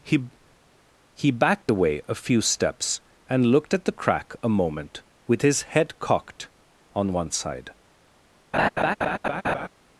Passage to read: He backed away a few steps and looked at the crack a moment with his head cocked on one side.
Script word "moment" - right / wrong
right